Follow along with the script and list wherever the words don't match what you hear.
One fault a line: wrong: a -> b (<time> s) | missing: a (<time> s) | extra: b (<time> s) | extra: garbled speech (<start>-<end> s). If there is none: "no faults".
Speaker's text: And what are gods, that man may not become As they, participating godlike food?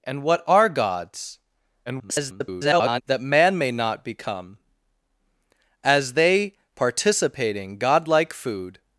extra: garbled speech (1.9-3.0 s)